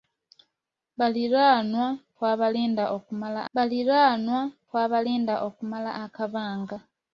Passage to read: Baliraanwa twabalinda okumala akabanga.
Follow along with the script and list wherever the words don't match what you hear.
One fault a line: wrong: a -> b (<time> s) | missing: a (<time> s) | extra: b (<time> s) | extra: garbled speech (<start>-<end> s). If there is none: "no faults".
extra: baliraanwa twabalinda okumala (3.5 s)